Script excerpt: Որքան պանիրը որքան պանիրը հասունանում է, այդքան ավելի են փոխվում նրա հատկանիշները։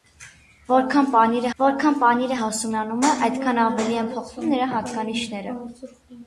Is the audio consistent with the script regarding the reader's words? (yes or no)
yes